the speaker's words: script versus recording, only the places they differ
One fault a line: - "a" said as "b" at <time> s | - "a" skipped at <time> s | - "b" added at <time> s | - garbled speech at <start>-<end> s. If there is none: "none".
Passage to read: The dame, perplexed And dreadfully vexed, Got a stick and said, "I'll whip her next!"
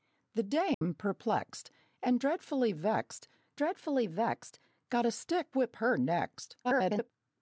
- "dreadfully vexed" added at 3.6 s
- "and said I'll" skipped at 5.5 s
- garbled speech at 6.6-7.1 s